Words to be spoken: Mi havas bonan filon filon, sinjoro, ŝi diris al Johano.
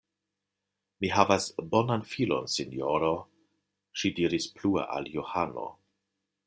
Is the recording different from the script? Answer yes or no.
yes